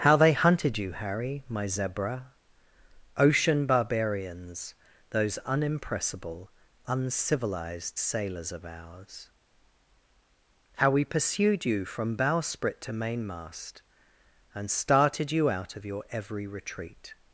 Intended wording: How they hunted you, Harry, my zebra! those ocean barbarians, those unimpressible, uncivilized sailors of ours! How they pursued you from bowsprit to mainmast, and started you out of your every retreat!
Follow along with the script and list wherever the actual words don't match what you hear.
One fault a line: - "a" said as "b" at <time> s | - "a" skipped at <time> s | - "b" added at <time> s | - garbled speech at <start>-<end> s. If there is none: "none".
- "those" skipped at 2.3 s
- "they" said as "we" at 10.9 s